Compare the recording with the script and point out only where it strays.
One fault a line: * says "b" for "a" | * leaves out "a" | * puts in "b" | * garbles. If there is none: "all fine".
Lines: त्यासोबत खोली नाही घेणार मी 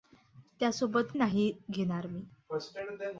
* leaves out "खोली"